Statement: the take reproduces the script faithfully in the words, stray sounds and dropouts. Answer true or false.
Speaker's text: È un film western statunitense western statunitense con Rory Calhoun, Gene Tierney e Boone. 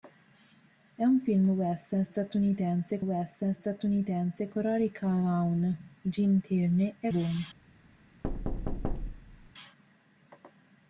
false